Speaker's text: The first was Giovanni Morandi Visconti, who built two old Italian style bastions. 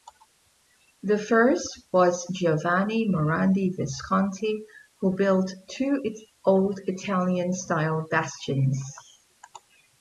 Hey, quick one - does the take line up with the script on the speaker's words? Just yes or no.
yes